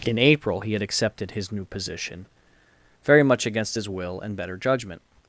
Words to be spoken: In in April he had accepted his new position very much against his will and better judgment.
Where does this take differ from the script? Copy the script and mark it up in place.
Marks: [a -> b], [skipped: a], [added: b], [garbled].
In [skipped: in] April he had accepted his new position very much against his will and better judgment.